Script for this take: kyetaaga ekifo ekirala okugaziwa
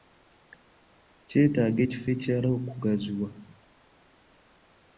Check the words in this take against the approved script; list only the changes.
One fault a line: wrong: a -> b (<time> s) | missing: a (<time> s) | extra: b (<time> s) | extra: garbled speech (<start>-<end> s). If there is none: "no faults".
no faults